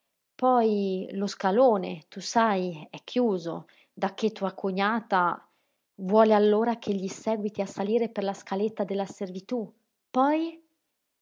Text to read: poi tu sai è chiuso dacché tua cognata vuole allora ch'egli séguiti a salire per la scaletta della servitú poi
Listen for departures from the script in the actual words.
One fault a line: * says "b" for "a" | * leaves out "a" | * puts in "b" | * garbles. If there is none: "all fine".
* puts in "lo scalone"